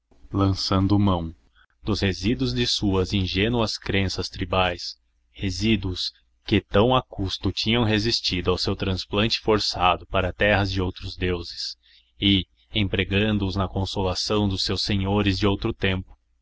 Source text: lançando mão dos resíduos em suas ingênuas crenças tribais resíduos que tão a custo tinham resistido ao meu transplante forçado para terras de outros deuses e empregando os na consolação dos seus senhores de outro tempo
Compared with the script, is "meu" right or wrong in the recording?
wrong